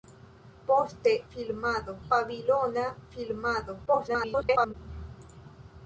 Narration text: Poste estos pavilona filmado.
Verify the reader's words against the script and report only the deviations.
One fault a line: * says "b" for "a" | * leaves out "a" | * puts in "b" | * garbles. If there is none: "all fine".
* says "filmado" for "estos"
* garbles